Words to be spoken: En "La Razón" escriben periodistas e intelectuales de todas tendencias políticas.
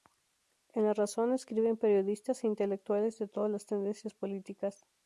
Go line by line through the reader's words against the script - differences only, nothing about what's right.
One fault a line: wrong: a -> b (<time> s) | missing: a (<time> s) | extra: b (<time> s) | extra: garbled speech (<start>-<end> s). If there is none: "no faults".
extra: las (3.5 s)